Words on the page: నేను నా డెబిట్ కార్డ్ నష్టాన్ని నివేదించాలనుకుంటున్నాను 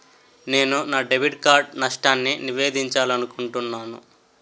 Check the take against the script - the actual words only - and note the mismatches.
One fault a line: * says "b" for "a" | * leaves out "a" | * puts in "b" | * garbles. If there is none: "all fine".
all fine